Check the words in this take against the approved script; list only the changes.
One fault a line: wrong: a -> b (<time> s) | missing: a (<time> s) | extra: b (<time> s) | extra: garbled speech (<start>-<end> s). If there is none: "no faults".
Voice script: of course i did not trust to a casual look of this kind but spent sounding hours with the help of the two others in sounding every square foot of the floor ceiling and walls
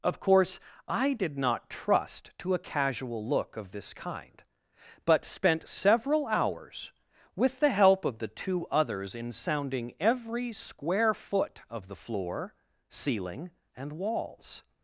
wrong: sounding -> several (5.7 s)